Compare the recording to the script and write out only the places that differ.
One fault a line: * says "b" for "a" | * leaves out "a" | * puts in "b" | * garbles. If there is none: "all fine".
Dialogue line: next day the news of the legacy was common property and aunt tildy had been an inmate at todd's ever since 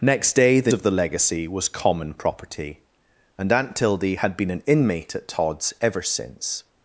* leaves out "news"